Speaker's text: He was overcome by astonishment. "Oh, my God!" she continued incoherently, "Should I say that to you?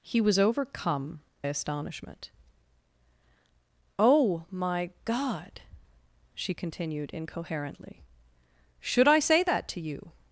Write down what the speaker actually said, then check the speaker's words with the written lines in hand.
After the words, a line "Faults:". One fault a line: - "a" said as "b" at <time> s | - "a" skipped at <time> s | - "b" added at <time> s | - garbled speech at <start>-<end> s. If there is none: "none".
He was overcome astonishment. "Oh, my God!" she continued incoherently, "Should I say that to you?
Faults:
- "by" skipped at 1.2 s